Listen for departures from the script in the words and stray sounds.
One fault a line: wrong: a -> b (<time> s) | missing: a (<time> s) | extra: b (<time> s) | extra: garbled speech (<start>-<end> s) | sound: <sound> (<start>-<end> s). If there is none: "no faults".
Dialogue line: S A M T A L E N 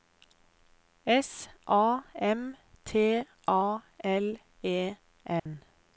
sound: dropout (5.4-5.5 s)